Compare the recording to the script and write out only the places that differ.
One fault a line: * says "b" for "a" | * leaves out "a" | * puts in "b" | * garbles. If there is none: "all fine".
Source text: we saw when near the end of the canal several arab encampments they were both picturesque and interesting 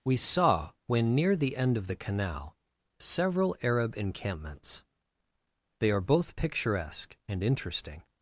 * says "are" for "were"